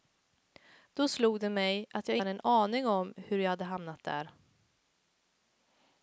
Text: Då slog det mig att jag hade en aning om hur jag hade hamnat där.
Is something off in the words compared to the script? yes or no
no